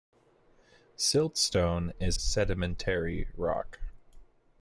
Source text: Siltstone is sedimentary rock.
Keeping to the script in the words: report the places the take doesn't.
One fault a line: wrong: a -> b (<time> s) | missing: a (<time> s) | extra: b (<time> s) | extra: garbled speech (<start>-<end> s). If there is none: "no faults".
no faults